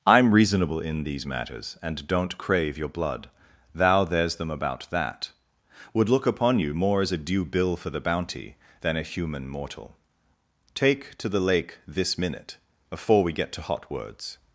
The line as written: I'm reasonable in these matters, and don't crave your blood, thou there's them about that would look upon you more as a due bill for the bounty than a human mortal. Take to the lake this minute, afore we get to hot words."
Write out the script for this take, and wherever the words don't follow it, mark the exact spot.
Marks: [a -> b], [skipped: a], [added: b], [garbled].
I'm reasonable in these matters, and don't crave your blood, thou there's them about that would look upon you more as a due bill for the bounty than a human mortal. Take to the lake this minute, afore we get to hot words."